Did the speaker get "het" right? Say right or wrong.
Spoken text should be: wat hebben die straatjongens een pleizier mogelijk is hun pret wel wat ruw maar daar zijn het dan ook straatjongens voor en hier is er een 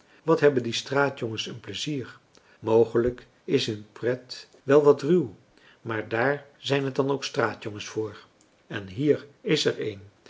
right